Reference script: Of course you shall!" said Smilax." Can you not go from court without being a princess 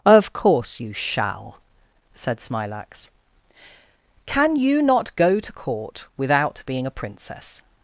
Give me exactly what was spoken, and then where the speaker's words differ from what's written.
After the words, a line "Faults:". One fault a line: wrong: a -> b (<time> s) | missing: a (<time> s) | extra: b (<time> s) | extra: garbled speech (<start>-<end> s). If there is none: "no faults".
Of course you shall!" said Smilax." Can you not go to court without being a princess
Faults:
wrong: from -> to (5.4 s)